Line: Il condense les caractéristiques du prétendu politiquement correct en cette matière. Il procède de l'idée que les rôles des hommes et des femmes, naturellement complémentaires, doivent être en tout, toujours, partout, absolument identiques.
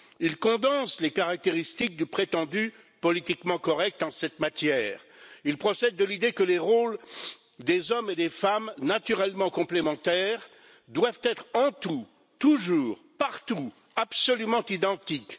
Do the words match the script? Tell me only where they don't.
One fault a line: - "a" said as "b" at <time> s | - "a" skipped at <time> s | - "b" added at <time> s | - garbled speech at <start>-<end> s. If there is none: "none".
none